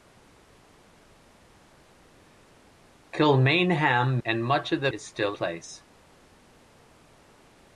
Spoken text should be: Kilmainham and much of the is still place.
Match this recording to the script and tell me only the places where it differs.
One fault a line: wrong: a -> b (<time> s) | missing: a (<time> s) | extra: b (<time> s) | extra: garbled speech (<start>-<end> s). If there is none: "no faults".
no faults